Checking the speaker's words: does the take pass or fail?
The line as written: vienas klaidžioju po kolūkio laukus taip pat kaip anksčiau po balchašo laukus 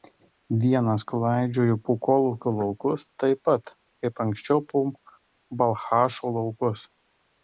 pass